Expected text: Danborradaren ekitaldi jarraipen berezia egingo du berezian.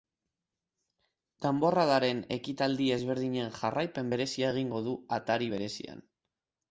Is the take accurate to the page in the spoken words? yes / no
no